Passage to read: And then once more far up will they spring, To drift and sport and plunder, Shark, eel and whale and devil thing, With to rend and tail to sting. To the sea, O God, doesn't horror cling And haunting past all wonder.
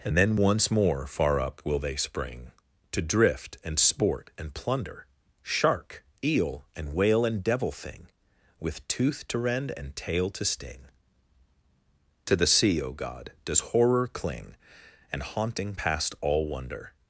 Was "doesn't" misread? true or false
true